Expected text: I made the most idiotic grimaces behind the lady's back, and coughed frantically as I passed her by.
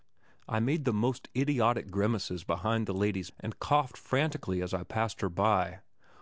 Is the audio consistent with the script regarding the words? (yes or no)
no